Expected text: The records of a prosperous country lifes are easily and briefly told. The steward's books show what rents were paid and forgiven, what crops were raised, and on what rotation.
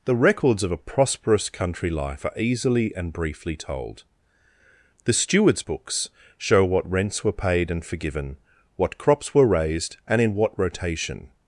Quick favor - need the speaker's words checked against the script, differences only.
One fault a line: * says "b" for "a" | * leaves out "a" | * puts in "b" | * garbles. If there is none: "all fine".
* says "life" for "lifes"
* says "in" for "on"